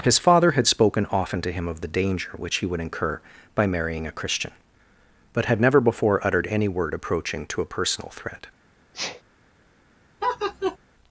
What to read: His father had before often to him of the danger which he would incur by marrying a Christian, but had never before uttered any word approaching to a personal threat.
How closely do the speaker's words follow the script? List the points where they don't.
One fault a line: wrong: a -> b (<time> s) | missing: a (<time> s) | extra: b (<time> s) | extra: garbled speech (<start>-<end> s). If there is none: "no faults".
wrong: before -> spoken (0.7 s)